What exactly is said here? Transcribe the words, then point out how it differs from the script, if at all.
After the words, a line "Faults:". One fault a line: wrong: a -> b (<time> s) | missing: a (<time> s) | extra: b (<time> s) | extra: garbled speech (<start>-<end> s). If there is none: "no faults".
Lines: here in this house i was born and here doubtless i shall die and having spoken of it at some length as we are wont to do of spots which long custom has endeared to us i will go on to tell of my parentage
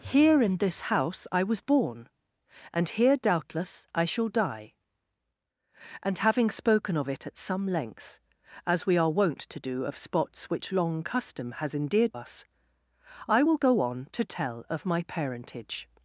here in this house i was born and here doubtless i shall die and having spoken of it at some length as we are wont to do of spots which long custom has endeared us i will go on to tell of my parentage
Faults:
missing: to (12.2 s)